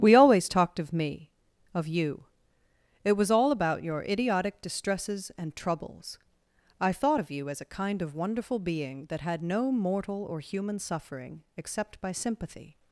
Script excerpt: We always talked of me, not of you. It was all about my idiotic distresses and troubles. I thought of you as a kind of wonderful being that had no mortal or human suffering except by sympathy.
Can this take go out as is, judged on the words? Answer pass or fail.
fail